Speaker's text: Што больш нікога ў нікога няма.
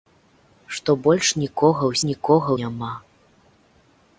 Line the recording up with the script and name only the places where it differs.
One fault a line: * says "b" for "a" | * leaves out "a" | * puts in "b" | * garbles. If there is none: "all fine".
all fine